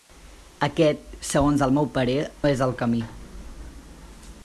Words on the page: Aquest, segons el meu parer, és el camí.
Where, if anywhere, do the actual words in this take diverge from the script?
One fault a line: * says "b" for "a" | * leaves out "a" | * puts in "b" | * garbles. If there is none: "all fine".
all fine